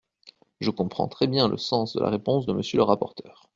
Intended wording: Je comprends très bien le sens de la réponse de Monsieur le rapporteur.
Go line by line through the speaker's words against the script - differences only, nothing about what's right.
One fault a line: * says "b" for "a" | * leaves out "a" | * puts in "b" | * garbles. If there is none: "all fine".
all fine